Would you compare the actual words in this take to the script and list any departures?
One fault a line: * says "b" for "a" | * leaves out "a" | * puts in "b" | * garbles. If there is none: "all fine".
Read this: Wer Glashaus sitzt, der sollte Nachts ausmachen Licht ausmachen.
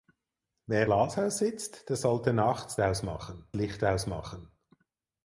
all fine